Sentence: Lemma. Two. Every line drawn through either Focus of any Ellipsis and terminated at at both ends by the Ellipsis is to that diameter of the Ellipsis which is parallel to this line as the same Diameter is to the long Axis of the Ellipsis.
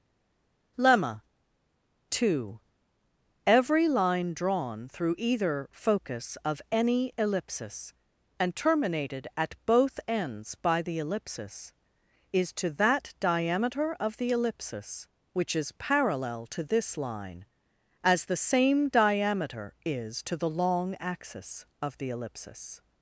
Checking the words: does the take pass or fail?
fail